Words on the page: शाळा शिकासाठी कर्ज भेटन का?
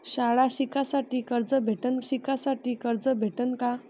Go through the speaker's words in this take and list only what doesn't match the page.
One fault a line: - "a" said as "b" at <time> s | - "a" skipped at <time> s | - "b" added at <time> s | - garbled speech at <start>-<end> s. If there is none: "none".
- "शिकासाठी कर्ज भेटन" added at 2.0 s